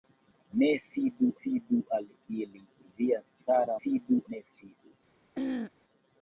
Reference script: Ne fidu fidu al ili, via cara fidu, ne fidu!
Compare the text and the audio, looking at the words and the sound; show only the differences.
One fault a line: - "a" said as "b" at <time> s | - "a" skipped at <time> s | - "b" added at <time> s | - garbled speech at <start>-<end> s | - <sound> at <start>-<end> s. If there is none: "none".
- throat clearing at 5.3-5.7 s